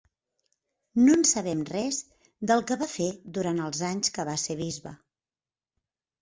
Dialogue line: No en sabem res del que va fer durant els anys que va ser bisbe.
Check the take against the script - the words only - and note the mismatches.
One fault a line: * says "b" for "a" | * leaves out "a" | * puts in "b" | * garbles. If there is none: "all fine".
all fine